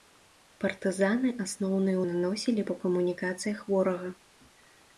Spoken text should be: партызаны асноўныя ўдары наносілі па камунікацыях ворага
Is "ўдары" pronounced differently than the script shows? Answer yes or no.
yes